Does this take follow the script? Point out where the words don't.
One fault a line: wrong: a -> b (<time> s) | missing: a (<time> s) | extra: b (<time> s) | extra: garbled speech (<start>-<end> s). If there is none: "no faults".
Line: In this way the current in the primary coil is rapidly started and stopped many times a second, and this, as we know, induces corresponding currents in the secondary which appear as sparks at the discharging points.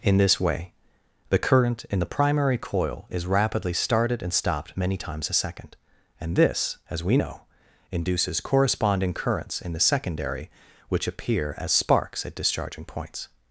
missing: the (12.3 s)